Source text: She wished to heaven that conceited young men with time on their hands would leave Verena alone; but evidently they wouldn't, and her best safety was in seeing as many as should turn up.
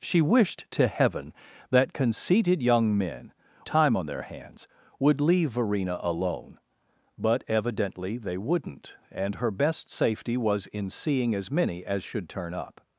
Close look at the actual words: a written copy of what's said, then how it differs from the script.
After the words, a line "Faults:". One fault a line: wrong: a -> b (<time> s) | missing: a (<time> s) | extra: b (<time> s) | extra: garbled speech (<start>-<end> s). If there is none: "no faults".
She wished to heaven that conceited young men time on their hands would leave Verena alone; but evidently they wouldn't, and her best safety was in seeing as many as should turn up.
Faults:
missing: with (3.3 s)